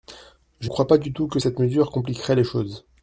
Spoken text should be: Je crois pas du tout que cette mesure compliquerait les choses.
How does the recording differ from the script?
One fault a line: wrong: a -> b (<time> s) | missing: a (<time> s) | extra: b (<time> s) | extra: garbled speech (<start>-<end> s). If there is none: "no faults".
no faults